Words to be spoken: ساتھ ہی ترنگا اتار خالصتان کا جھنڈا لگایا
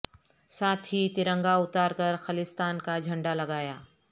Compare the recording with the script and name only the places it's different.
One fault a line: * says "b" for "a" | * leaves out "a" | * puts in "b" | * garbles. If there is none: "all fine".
* puts in "کر"